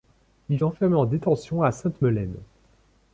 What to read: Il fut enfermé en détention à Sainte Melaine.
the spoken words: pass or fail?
fail